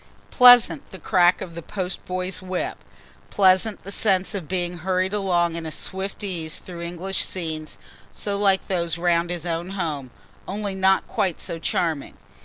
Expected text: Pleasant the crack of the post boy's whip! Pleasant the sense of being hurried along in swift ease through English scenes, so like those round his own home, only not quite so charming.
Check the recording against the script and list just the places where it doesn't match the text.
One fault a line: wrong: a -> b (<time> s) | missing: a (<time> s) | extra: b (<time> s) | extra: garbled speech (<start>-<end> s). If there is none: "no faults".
no faults